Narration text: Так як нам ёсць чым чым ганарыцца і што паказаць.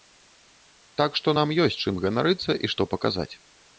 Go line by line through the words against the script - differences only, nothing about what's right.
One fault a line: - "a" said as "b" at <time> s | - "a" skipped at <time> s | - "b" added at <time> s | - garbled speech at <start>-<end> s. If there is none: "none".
- "як" said as "што" at 1.2 s
- "чым" skipped at 2.0 s